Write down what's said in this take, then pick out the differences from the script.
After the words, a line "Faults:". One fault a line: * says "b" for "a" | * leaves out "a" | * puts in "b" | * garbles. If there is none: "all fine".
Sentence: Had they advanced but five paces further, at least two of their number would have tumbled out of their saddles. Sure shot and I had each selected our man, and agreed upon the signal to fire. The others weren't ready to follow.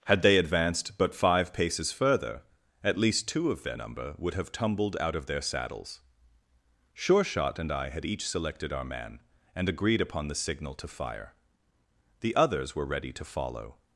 Had they advanced but five paces further, at least two of their number would have tumbled out of their saddles. Sure shot and I had each selected our man, and agreed upon the signal to fire. The others were ready to follow.
Faults:
* says "were" for "weren't"